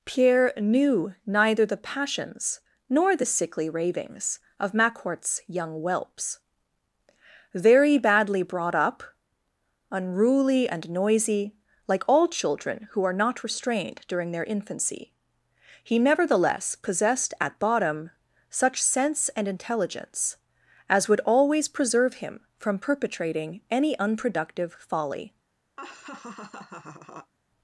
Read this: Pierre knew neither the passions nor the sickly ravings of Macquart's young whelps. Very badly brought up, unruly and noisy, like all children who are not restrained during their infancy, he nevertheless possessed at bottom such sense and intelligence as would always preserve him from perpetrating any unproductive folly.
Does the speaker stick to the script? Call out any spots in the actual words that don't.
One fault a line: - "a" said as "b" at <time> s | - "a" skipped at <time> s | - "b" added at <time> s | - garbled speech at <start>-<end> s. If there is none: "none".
none